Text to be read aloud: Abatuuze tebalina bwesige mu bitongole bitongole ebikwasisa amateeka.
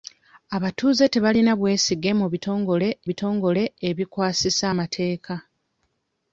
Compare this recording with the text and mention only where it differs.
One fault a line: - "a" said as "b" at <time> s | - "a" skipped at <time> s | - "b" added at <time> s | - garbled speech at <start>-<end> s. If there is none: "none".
none